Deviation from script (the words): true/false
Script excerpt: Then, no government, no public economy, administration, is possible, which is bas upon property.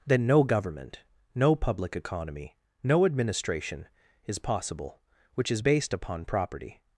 true